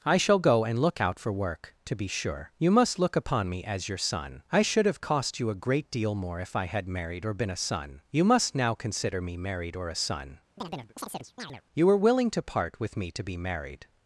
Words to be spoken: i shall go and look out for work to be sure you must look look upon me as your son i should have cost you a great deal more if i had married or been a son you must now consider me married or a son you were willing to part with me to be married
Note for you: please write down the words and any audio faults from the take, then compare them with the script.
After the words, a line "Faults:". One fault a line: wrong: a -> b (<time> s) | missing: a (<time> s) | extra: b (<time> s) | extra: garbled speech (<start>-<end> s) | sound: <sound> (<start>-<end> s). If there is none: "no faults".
i shall go and look out for work to be sure you must look upon me as your son i should have cost you a great deal more if i had married or been a son you must now consider me married or a son you were willing to part with me to be married
Faults:
missing: look (3.2 s)
sound: chirp (10.6-11.6 s)